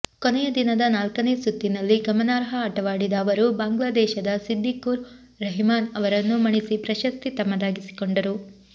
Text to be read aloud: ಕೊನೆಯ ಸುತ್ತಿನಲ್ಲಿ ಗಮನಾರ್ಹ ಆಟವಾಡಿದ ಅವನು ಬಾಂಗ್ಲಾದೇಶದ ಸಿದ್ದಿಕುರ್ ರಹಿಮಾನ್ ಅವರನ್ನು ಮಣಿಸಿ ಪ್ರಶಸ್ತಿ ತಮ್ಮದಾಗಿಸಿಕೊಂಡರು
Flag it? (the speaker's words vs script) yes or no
yes